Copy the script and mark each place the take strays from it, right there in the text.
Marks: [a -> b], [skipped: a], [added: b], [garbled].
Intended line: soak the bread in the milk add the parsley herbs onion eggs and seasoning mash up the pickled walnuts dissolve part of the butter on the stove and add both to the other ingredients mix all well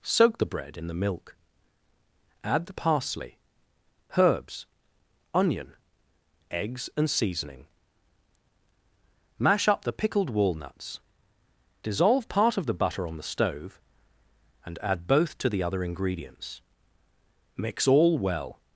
soak the bread in the milk add the parsley herbs onion eggs and seasoning mash up the pickled walnuts dissolve part of the butter on the stove and add both to the other ingredients mix all well